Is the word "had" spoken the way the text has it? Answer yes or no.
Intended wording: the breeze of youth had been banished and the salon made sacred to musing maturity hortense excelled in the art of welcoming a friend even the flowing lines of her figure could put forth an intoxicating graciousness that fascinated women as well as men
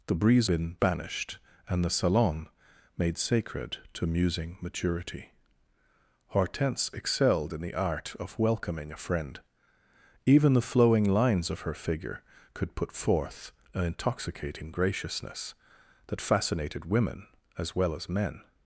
no